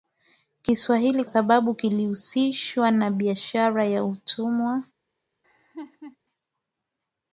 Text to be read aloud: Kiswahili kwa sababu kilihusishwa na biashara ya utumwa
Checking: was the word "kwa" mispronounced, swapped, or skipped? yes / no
yes